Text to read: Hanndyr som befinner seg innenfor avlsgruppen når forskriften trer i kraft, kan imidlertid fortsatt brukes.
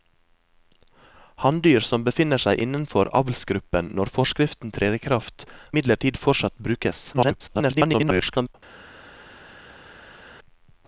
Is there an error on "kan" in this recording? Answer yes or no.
yes